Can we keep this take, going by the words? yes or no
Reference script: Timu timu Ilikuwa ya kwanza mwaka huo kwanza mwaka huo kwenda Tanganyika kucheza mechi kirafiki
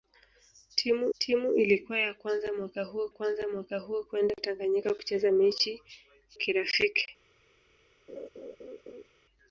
yes